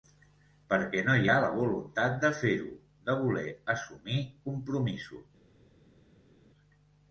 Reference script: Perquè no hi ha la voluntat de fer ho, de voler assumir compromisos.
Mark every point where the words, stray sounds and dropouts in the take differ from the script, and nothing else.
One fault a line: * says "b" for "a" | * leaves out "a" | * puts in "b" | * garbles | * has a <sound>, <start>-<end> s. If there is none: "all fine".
all fine